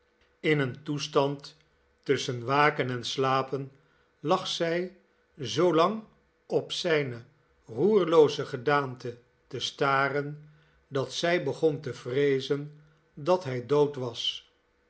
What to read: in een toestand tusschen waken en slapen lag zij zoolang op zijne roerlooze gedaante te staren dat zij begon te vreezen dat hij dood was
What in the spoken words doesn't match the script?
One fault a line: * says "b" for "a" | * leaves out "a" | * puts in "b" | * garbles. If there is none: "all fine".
all fine